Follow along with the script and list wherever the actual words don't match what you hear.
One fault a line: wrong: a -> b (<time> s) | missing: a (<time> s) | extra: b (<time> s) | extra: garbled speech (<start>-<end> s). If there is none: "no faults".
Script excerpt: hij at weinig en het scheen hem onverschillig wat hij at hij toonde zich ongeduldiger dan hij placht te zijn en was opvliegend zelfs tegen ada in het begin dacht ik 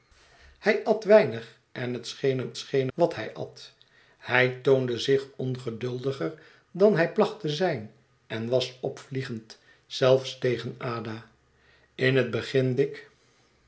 wrong: onverschillig -> scheen (2.6 s)
missing: dacht (12.8 s)